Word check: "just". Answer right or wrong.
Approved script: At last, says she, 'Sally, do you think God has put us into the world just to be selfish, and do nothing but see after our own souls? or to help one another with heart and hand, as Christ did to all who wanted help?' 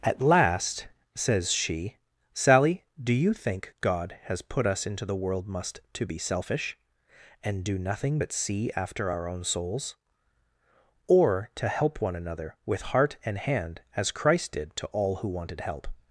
wrong